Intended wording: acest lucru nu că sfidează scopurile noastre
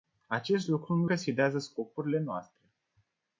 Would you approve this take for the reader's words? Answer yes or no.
yes